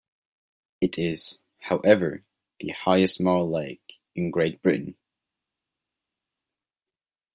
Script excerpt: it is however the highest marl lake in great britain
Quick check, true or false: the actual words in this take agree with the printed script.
true